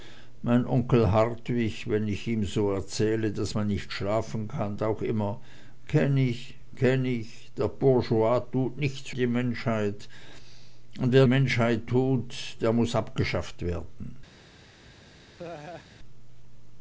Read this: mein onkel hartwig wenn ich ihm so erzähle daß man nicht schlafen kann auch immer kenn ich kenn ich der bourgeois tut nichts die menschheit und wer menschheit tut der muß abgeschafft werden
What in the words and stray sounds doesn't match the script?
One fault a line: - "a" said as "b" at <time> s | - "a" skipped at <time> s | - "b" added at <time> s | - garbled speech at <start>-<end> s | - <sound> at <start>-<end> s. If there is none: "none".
- laugh at 15.4-15.9 s